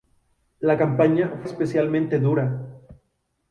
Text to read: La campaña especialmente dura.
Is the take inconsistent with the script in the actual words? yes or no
no